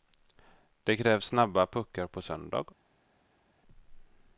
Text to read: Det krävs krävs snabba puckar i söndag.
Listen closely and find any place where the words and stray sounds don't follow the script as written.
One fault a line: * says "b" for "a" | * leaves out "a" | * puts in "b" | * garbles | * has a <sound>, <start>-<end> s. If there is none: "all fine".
* leaves out "krävs"
* says "på" for "i"